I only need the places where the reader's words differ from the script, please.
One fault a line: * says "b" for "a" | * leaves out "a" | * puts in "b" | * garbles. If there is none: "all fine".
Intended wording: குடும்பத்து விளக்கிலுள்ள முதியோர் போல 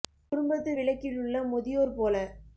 all fine